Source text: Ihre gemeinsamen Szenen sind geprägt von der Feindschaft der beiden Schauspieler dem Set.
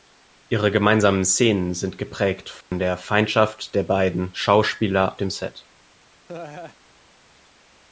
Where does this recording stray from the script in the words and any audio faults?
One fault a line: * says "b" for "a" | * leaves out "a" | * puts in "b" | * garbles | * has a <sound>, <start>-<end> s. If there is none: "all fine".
* has a dropout, 2.6-2.7 s
* has a laugh, 6.3-6.8 s